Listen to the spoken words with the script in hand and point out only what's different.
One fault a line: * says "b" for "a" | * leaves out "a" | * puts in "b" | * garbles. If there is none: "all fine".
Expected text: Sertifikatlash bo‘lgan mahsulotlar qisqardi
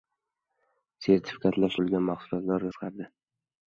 all fine